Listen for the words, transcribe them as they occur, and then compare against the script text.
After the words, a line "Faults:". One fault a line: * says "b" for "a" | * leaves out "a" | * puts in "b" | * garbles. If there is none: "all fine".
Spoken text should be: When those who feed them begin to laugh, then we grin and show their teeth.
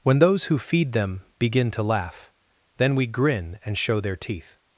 When those who feed them begin to laugh, then we grin and show their teeth.
Faults:
all fine